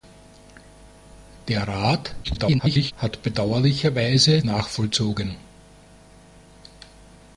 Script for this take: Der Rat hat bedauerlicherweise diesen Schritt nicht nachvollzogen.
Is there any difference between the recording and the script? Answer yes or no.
yes